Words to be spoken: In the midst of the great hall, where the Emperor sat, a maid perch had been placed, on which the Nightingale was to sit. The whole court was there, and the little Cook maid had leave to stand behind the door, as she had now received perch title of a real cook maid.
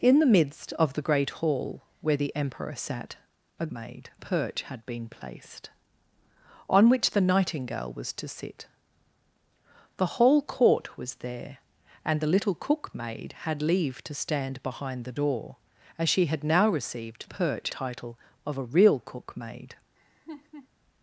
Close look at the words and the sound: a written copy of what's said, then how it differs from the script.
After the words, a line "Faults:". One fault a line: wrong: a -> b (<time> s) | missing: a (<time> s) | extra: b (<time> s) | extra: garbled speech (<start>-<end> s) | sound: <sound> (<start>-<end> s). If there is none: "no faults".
In the midst of the great hall, where the Emperor sat, a maid perch had been placed, on which the Nightingale was to sit. The whole court was there, and the little Cook maid had leave to stand behind the door, as she had now received perch title of a real cook maid.
Faults:
sound: laugh (20.0-20.7 s)